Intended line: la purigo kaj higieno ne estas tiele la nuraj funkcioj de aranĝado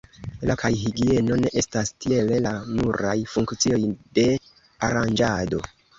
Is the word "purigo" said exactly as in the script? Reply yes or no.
no